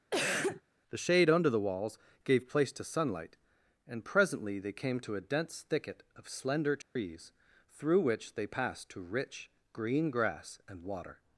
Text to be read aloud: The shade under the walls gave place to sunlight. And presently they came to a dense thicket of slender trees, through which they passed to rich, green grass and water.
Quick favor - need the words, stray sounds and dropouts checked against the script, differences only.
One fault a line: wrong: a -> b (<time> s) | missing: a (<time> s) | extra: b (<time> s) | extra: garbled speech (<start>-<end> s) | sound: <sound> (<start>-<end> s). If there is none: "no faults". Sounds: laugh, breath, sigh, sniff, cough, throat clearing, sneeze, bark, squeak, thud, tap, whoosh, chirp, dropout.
sound: cough (0.1-0.6 s)
sound: dropout (6.8-7.0 s)